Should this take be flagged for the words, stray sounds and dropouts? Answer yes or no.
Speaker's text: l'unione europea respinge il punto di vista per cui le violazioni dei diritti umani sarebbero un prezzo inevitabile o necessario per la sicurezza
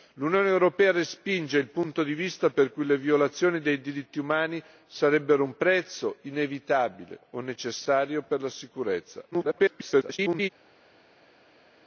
yes